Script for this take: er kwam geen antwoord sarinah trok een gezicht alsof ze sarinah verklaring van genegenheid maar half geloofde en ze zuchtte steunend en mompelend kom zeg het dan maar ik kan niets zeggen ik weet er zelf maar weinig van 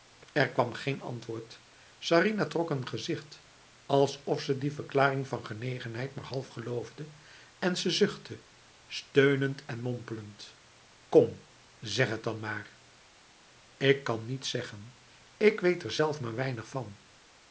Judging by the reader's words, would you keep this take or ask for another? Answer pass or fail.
fail